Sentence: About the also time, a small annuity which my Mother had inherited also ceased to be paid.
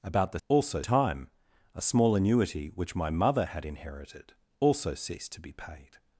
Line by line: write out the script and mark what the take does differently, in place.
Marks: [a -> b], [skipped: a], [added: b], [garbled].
About the also time, a small annuity which my Mother had inherited also ceased to be paid.